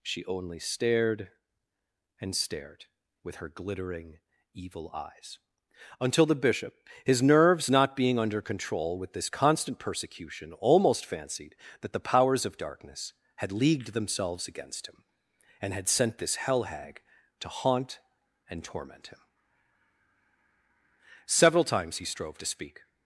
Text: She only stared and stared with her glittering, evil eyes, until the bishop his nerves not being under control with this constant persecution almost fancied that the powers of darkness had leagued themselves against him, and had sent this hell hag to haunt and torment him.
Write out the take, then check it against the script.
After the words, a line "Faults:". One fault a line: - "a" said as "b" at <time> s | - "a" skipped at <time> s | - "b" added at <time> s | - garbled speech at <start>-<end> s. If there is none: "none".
She only stared and stared with her glittering, evil eyes, until the bishop his nerves not being under control with this constant persecution almost fancied that the powers of darkness had leagued themselves against him, and had sent this hell hag to haunt and torment him. Several times he strove to speak
Faults:
- "Several times he strove to speak" added at 21.2 s